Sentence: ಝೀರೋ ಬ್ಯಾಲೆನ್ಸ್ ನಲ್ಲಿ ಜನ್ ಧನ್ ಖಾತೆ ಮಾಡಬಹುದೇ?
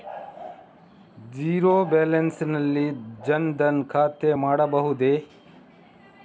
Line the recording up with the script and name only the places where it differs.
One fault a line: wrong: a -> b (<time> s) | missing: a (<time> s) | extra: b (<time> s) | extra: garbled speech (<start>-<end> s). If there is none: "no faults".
no faults